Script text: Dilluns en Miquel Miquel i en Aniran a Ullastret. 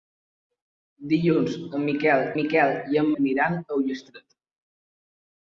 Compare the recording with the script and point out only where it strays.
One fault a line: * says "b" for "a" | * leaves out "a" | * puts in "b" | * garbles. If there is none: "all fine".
all fine